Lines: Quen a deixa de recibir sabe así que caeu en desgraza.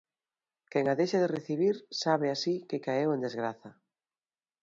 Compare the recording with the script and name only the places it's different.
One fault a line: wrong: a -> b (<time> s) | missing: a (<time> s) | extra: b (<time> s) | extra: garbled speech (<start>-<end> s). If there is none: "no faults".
no faults